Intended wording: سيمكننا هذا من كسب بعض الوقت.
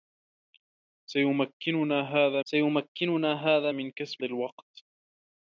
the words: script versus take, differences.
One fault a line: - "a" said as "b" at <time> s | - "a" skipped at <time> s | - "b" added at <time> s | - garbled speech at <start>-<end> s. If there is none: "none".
- "سيمكننا هذا" added at 2.5 s
- "بعض" skipped at 4.2 s